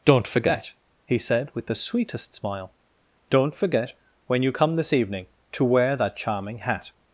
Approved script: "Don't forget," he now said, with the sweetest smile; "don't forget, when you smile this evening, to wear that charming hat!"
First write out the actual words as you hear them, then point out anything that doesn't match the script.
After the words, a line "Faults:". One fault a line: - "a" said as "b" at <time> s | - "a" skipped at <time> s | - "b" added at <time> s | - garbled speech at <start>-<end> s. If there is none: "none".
"Don't forget," he said, with the sweetest smile; "don't forget, when you come this evening, to wear that charming hat!"
Faults:
- "now" skipped at 1.2 s
- "smile" said as "come" at 4.5 s